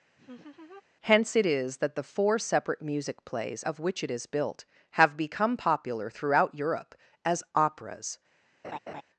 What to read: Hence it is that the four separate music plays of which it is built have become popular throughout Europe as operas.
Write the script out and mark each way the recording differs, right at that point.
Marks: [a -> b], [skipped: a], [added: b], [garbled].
Hence it is that the four separate music plays of which it is built have become popular throughout Europe as operas.